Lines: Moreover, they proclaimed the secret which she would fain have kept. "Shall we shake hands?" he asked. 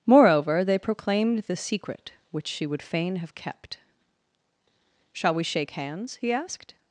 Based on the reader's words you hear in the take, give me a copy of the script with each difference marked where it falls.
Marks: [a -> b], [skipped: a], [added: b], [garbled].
Moreover, they proclaimed the secret which she would fain have kept. "Shall we shake hands?" he asked.